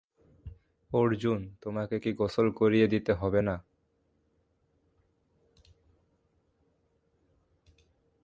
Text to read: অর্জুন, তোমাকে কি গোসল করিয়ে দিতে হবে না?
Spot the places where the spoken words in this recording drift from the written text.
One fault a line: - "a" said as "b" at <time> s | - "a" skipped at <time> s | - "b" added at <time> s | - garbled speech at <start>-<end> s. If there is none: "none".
none